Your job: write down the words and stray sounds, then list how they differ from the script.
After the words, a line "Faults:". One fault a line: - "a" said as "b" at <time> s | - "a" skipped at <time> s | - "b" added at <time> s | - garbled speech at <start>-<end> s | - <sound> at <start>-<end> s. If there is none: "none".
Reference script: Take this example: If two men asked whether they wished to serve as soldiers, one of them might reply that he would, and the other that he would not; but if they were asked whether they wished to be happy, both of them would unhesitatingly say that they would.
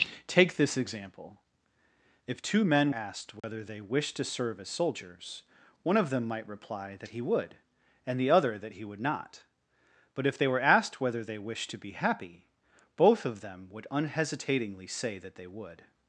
Take this example: If two men asked whether they wished to serve as soldiers, one of them might reply that he would, and the other that he would not; but if they were asked whether they wished to be happy, both of them would unhesitatingly say that they would.
Faults:
- dropout at 3.4-3.4 s